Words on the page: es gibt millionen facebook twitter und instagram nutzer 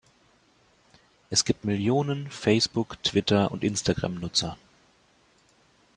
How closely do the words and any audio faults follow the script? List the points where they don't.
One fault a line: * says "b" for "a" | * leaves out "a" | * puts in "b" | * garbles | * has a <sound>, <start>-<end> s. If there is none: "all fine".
all fine